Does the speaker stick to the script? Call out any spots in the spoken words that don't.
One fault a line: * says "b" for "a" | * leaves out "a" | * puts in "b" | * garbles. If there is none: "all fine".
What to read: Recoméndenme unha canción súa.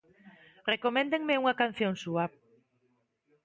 all fine